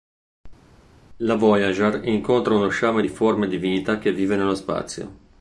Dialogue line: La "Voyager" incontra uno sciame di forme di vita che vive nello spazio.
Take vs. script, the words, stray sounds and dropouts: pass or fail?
pass